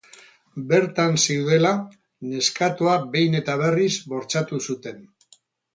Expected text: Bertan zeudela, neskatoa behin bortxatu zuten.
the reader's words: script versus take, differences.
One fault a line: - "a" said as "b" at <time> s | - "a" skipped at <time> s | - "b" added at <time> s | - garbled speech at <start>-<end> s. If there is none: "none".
- "eta berriz" added at 3.4 s